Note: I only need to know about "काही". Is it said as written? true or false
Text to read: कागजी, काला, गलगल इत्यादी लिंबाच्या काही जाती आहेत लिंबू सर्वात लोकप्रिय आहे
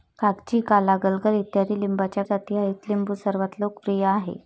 false